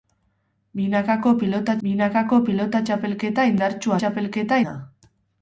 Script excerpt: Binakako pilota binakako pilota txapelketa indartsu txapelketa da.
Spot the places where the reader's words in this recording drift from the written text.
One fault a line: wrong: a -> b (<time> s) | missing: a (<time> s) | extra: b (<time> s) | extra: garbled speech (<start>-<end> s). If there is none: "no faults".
no faults